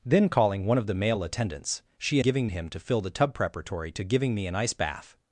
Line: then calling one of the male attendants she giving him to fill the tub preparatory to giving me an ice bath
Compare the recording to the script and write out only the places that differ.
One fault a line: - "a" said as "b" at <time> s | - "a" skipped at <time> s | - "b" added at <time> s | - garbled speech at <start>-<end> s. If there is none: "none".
none